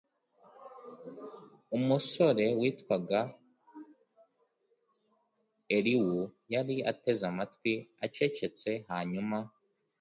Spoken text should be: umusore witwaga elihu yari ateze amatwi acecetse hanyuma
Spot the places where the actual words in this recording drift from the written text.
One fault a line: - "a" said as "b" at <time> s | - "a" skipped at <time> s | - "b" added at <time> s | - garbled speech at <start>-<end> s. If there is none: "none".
none